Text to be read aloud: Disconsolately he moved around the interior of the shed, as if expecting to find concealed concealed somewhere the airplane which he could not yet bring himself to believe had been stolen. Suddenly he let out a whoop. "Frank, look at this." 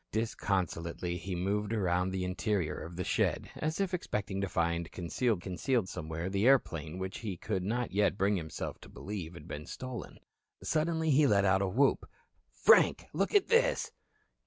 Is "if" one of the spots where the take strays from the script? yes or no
no